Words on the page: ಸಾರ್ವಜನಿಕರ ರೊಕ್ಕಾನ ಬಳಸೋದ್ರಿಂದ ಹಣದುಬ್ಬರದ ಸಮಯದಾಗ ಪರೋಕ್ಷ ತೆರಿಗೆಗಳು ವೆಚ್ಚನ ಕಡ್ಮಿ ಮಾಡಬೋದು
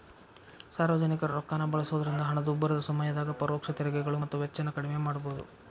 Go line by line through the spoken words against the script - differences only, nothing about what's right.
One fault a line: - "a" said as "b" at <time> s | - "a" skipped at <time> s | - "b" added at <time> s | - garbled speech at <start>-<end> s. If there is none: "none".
- "ಮತ್ತ" added at 4.2 s